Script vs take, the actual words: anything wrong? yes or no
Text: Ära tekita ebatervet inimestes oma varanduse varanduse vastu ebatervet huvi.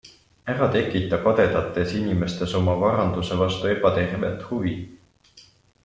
yes